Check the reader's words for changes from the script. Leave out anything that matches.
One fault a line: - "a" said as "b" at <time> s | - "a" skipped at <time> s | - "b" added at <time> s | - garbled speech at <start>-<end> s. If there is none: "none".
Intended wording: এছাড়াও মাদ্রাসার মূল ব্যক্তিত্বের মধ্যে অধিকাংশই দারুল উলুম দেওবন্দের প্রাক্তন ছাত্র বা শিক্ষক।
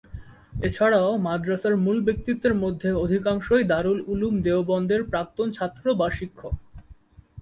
none